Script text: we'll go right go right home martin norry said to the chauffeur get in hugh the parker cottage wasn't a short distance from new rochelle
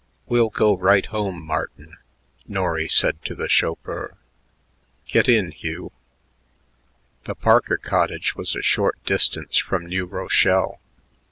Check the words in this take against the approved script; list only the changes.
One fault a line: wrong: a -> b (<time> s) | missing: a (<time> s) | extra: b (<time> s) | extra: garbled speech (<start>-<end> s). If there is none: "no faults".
missing: go right (1.1 s)
wrong: wasn't -> was (8.3 s)